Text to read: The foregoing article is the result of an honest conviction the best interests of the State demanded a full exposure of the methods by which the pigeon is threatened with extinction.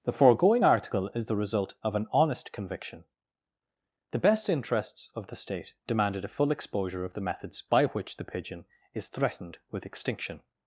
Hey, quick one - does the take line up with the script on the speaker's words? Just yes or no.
yes